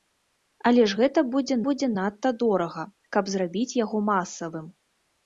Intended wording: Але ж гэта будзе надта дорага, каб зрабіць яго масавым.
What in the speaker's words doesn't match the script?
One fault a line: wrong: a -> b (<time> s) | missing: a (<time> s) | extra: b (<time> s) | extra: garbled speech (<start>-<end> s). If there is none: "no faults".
extra: будзе (1.7 s)